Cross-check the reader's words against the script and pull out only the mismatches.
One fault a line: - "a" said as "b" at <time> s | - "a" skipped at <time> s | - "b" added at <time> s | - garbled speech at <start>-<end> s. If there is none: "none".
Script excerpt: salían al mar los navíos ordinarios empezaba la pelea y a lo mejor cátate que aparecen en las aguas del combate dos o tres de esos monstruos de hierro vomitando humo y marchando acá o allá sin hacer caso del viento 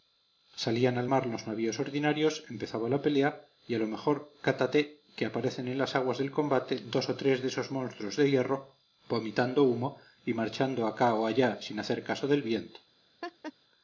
none